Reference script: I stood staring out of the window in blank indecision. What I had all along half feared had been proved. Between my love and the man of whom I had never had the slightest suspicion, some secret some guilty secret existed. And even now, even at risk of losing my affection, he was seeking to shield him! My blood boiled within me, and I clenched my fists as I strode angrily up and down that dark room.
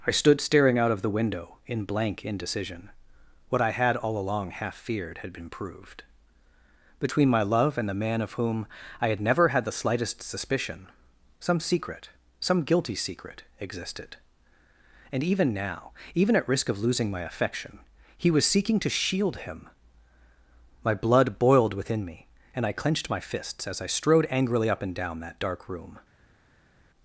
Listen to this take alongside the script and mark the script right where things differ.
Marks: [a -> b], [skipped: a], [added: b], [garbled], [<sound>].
I stood staring out of the window in blank indecision. What I had all along half feared had been proved. Between my love and the man of whom I had never had the slightest suspicion, some secret some guilty secret existed. And even now, even at risk of losing my affection, he was seeking to shield him! My blood boiled within me, and I clenched my fists as I strode angrily up and down that dark room.